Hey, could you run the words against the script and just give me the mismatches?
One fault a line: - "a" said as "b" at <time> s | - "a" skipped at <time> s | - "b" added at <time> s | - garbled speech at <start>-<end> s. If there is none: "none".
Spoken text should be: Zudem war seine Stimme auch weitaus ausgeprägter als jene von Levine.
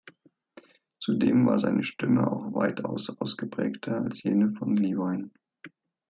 none